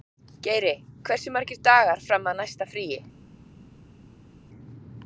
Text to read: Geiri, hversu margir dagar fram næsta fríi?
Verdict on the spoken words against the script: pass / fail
fail